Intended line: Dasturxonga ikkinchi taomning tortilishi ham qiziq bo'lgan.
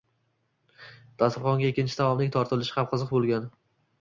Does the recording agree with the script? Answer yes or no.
yes